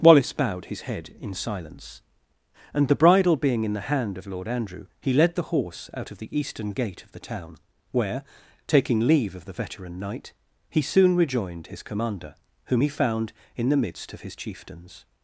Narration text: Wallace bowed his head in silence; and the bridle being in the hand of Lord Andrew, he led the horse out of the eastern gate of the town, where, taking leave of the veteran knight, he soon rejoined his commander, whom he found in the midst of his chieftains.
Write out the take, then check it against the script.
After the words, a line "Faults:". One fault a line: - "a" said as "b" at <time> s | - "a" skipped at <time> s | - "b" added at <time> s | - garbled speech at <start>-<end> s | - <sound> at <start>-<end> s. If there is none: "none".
Wallace bowed his head in silence; and the bridle being in the hand of Lord Andrew, he led the horse out of the eastern gate of the town, where, taking leave of the veteran knight, he soon rejoined his commander, whom he found in the midst of his chieftains.
Faults:
none